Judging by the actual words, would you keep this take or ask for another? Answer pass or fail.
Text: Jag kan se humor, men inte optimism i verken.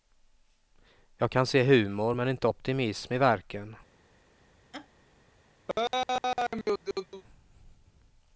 pass